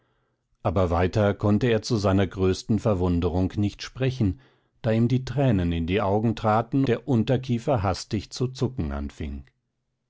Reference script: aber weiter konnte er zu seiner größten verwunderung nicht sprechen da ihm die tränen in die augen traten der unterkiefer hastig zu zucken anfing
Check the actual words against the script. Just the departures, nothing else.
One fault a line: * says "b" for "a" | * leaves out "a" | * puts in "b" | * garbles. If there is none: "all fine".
all fine